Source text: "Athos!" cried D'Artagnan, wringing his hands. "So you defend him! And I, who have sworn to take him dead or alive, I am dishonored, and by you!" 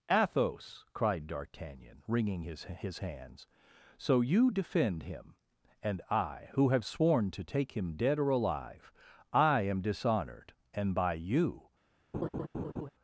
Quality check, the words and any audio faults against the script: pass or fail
fail